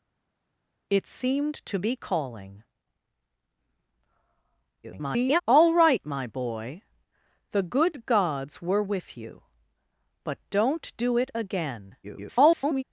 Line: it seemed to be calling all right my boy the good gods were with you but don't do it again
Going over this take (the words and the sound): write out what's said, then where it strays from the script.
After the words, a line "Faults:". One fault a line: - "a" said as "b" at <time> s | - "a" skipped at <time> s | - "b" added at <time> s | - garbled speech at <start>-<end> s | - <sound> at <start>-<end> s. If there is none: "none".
it seemed to be calling [garbled] all right my boy the good gods were with you but don't do it again [garbled]
Faults:
- garbled speech at 4.8-5.4 s
- garbled speech at 12.0-12.8 s